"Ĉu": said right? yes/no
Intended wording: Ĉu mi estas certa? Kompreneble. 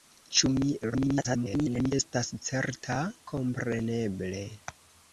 yes